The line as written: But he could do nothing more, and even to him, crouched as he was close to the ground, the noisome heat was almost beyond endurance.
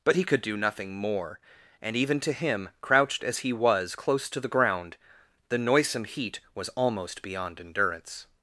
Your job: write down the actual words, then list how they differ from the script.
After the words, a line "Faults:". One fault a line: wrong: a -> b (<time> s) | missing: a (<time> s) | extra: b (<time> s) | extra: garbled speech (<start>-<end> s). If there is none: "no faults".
But he could do nothing more, and even to him, crouched as he was close to the ground, the noisome heat was almost beyond endurance.
Faults:
no faults